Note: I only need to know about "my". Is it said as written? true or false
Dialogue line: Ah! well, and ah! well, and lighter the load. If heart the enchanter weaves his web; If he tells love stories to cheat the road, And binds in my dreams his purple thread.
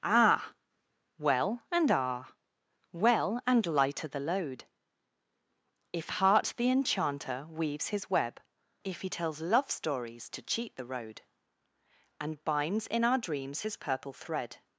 false